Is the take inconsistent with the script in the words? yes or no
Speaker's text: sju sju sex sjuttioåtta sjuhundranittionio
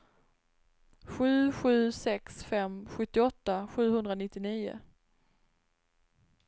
yes